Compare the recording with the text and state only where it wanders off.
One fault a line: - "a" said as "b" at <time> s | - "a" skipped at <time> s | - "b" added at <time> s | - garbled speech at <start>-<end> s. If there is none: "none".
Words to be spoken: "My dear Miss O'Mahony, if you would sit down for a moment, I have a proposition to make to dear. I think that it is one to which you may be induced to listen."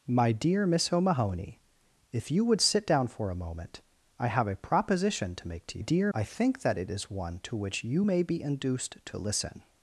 none